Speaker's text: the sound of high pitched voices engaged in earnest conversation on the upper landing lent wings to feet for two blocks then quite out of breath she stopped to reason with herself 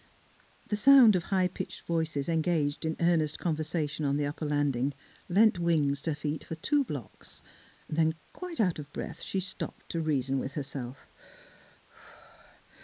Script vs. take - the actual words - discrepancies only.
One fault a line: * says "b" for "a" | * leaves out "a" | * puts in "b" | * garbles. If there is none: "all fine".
all fine